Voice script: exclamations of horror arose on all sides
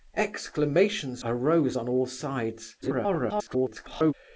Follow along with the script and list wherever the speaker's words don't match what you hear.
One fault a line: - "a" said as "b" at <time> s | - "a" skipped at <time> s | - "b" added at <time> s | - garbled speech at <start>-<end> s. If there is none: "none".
- "of horror" skipped at 1.2 s
- garbled speech at 2.8-4.1 s